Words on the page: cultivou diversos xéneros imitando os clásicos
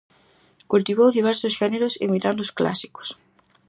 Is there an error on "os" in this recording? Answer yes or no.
no